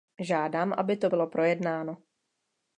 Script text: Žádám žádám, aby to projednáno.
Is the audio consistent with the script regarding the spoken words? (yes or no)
no